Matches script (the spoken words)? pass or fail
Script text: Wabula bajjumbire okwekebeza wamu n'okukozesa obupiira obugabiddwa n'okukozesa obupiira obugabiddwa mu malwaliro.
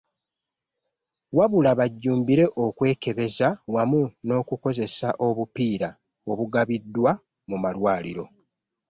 fail